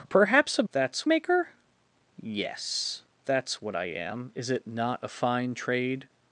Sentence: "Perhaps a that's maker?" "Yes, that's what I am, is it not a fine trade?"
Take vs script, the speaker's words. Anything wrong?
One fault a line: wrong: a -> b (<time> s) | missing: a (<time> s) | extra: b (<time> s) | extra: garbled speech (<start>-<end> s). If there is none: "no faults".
no faults